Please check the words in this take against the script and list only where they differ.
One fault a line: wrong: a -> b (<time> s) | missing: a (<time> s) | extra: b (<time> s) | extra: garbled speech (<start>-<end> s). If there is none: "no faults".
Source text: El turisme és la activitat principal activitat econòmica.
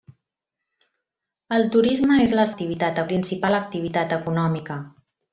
no faults